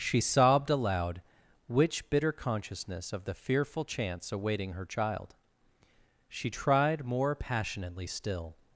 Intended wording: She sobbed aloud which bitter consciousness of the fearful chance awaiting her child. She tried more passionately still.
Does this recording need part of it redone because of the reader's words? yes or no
no